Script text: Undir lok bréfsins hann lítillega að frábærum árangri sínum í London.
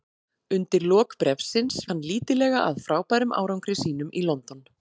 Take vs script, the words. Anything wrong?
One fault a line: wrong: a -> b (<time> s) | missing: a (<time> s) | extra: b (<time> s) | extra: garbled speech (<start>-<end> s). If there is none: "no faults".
no faults